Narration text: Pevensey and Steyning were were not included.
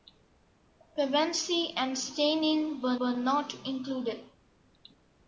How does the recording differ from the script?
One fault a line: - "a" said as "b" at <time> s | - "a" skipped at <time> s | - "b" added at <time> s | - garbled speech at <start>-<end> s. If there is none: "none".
none